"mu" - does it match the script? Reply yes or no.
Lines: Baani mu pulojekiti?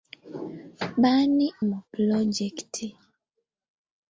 yes